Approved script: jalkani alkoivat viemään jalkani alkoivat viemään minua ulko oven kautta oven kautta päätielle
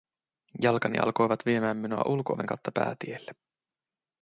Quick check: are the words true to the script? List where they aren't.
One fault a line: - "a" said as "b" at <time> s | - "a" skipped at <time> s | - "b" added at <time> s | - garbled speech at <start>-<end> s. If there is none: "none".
- "jalkani alkoivat viemään" skipped at 1.8 s
- "oven kautta" skipped at 2.7 s